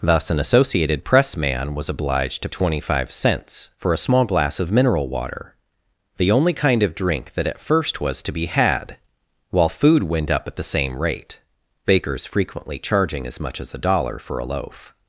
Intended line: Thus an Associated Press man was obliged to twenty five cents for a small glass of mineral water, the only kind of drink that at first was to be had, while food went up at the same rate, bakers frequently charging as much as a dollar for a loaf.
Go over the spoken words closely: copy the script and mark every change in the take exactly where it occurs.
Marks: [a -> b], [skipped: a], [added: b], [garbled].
Thus an Associated Press man was obliged to twenty five cents for a small glass of mineral water, the only kind of drink that at first was to be had, while food went up at the same rate, bakers frequently charging as much as a dollar for a loaf.